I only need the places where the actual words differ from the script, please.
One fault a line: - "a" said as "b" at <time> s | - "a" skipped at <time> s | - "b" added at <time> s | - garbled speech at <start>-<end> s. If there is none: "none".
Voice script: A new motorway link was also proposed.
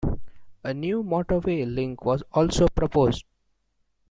none